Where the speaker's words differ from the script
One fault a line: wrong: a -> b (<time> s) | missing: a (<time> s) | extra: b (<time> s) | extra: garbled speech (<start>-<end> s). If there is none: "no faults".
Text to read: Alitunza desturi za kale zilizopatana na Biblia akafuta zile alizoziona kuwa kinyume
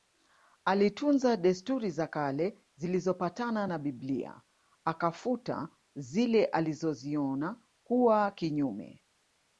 no faults